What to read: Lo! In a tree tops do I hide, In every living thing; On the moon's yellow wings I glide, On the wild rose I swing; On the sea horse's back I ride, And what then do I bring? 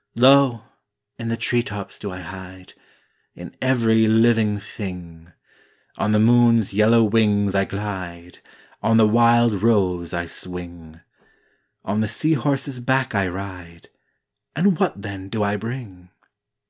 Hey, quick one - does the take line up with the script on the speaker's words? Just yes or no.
no